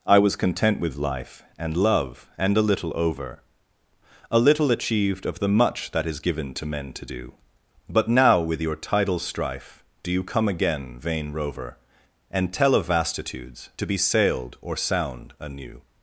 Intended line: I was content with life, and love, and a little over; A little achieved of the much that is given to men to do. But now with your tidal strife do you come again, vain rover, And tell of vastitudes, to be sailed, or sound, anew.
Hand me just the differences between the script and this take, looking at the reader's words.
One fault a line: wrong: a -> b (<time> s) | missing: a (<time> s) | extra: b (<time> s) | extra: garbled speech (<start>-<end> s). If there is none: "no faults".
no faults